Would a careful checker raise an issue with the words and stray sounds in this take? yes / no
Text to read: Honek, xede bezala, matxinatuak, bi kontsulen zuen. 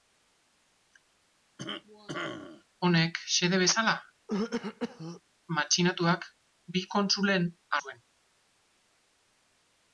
yes